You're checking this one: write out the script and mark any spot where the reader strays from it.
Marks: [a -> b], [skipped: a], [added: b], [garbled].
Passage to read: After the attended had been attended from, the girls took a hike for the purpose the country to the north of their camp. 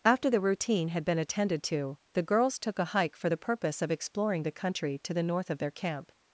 After the [attended -> routine] had been attended [from, -> to] the girls took a hike for the purpose [added: of exploring] the country to the north of their camp.